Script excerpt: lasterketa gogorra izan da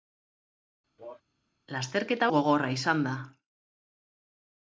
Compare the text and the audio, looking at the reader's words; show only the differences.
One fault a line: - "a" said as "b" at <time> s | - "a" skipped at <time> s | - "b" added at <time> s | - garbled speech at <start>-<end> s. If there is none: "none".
none